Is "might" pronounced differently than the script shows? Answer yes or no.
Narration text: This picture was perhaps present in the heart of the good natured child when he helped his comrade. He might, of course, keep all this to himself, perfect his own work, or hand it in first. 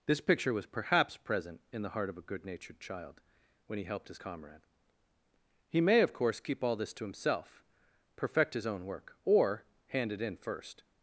yes